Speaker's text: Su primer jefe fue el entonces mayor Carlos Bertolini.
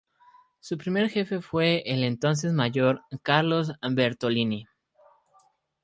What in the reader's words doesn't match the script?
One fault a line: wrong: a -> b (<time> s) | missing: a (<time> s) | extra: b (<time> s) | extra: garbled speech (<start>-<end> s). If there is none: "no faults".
no faults